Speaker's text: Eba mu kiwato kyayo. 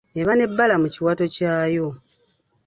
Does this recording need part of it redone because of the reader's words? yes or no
yes